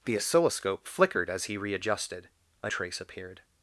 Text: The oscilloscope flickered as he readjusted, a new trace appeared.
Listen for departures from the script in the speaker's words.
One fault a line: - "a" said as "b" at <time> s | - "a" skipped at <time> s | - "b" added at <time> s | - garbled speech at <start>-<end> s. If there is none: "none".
- "new" skipped at 2.7 s